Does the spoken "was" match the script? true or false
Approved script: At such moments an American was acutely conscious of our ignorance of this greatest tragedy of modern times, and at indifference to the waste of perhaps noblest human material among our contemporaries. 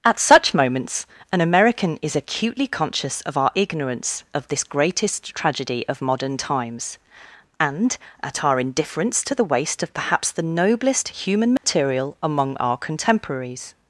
false